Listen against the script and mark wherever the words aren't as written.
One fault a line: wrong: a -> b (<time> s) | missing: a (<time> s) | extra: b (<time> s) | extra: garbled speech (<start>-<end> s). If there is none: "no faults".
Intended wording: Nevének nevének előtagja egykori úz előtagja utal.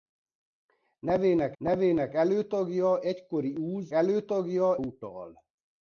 no faults